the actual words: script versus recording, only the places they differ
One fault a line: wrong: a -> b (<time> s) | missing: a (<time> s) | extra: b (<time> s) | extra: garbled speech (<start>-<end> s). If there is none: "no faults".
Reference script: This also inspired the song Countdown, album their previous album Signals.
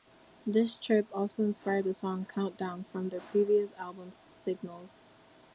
extra: trip (0.8 s)
wrong: album -> from (2.9 s)